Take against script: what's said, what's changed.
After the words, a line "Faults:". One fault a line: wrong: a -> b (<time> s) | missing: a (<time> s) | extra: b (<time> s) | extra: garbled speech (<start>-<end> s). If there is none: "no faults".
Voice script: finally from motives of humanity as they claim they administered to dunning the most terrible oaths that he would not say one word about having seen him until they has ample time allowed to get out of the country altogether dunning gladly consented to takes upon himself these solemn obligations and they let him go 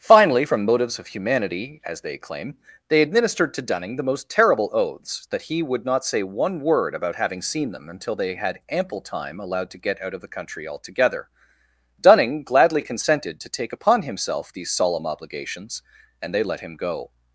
finally from motives of humanity as they claim they administered to dunning the most terrible oaths that he would not say one word about having seen them until they had ample time allowed to get out of the country altogether dunning gladly consented to take upon himself these solemn obligations and they let him go
Faults:
wrong: him -> them (7.7 s)
wrong: has -> had (8.3 s)
wrong: takes -> take (13.5 s)